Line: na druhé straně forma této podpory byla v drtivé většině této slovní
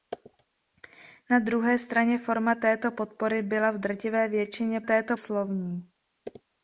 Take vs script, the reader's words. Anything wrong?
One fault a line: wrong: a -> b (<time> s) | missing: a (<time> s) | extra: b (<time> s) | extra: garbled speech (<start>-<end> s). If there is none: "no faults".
no faults